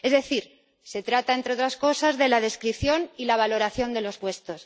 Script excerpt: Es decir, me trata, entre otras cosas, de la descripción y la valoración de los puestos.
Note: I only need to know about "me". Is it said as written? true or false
false